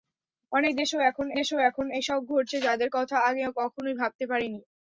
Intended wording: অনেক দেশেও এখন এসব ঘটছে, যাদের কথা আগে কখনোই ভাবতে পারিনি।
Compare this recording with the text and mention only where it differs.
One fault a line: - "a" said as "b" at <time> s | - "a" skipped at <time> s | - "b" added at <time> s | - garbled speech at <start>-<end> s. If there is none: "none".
- "দেশেও এখন" added at 1.4 s